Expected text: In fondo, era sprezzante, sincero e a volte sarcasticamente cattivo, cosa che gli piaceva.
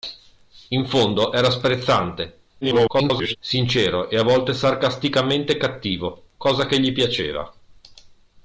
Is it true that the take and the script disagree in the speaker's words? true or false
true